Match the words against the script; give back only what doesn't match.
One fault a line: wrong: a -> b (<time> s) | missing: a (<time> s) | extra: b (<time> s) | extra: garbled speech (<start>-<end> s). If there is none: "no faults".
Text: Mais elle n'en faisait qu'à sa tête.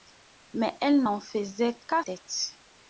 missing: sa (2.0 s)